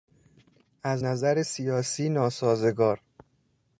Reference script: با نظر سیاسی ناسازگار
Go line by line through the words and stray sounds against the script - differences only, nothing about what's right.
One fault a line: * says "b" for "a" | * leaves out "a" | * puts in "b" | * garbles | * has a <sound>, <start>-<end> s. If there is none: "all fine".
* says "از" for "با"